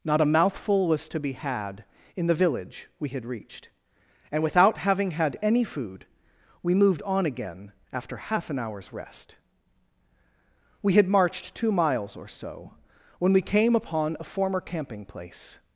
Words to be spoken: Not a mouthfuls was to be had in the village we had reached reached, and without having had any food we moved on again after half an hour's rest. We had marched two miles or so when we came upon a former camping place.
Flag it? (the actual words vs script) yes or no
yes